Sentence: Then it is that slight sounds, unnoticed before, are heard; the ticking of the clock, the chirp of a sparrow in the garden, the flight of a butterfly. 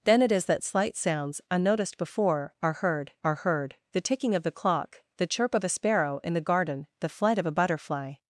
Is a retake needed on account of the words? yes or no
yes